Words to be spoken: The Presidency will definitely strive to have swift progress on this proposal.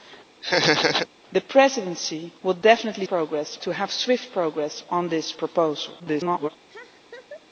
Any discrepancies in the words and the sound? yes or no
yes